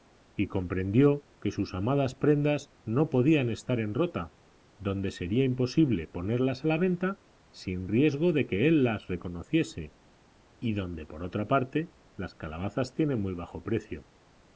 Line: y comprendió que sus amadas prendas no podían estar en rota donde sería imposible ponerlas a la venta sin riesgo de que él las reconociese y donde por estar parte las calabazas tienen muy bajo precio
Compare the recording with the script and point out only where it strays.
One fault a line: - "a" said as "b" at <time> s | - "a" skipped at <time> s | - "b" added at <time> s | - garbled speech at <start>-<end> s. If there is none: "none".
- "estar" said as "otra" at 11.2 s